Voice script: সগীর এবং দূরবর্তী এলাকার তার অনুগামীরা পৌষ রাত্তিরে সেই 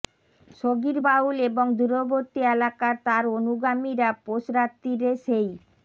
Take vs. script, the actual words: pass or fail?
fail